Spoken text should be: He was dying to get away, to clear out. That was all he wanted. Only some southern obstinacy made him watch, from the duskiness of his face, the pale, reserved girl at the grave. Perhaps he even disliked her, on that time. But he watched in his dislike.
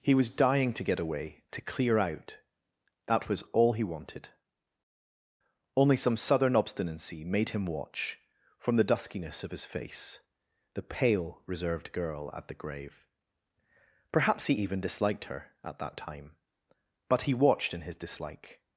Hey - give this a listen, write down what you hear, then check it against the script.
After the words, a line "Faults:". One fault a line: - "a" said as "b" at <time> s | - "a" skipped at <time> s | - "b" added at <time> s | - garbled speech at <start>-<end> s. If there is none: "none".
He was dying to get away, to clear out. That was all he wanted. Only some southern obstinacy made him watch, from the duskiness of his face, the pale, reserved girl at the grave. Perhaps he even disliked her, at that time. But he watched in his dislike.
Faults:
- "on" said as "at" at 15.6 s